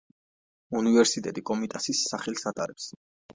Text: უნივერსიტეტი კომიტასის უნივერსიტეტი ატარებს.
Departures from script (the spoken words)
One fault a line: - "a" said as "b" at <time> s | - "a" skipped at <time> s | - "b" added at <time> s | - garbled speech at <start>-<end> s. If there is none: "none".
- "უნივერსიტეტი" said as "სახელს" at 2.1 s